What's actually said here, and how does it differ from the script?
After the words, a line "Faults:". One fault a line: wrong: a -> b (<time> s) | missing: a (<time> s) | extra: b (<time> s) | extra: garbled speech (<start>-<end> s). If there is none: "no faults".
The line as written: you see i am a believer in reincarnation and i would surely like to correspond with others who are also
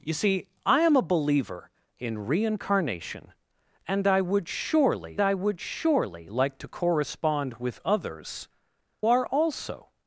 you see i am a believer in reincarnation and i would surely i would surely like to correspond with others are also
Faults:
extra: i would surely (5.2 s)
missing: who (8.5 s)